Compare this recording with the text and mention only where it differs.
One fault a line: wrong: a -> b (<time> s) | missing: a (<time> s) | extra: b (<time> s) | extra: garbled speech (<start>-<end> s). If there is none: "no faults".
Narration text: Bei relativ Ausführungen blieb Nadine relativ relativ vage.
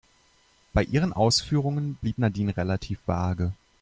wrong: relativ -> ihren (0.8 s)
missing: relativ (3.0 s)